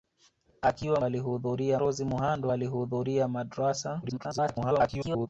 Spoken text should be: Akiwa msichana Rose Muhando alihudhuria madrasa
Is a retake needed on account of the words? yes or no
yes